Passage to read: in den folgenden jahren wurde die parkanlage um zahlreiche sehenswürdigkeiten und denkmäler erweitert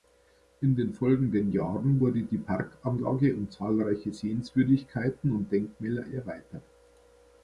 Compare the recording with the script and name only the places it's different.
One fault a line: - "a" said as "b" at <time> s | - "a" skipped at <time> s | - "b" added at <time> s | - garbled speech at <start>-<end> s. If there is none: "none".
none